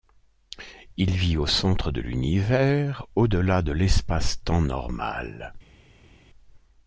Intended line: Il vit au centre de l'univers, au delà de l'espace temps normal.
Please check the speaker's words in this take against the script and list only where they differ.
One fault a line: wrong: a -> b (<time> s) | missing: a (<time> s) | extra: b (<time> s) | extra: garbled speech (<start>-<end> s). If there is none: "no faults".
no faults